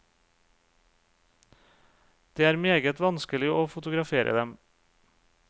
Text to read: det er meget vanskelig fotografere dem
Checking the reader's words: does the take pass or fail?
fail